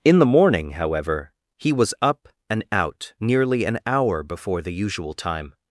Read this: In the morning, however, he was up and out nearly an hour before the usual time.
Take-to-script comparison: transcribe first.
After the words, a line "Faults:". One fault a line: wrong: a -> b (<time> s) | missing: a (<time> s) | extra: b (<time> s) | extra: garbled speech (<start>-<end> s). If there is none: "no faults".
In the morning, however, he was up and out nearly an hour before the usual time.
Faults:
no faults